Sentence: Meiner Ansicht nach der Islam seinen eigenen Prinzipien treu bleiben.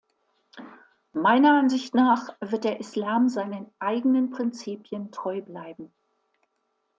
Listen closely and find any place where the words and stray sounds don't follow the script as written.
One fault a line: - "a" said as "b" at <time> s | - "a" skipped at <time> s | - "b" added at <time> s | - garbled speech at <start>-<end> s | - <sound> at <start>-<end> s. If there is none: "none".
- "wird" added at 2.4 s